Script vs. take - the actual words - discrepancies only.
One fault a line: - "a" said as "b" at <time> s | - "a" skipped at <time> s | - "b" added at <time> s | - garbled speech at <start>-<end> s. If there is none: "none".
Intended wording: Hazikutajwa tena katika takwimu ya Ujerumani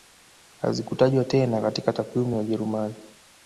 none